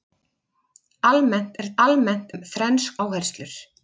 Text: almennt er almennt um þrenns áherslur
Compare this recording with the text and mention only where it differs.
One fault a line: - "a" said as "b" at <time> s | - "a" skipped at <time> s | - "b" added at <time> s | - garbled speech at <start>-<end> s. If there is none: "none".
none